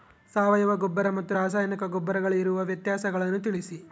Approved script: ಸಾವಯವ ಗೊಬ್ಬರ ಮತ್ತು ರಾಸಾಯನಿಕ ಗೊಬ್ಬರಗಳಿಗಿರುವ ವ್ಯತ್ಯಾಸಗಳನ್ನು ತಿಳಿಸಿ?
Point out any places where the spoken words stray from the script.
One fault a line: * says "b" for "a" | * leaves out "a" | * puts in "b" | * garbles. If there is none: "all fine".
all fine